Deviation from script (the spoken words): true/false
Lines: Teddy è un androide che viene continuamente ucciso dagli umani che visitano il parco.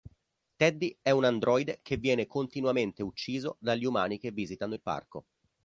false